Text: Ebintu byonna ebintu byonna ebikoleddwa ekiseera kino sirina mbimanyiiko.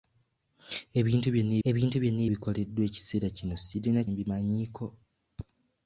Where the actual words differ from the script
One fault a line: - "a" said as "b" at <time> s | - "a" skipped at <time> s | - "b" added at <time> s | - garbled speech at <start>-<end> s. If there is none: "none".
none